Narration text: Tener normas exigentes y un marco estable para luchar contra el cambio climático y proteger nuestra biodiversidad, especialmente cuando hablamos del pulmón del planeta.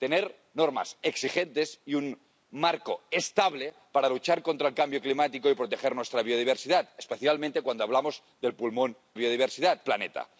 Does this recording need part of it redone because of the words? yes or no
yes